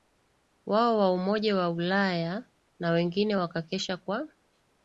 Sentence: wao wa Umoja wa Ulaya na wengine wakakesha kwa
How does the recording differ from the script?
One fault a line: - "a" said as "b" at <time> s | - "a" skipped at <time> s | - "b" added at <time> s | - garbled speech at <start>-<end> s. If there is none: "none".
none